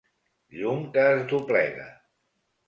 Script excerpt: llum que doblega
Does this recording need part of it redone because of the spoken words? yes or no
yes